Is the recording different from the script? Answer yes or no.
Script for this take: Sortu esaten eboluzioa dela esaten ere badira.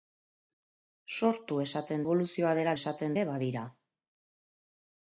no